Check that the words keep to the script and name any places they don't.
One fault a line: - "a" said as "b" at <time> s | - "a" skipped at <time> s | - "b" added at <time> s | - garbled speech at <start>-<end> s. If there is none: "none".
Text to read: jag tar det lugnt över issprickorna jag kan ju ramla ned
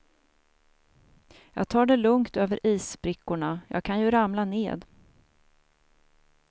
none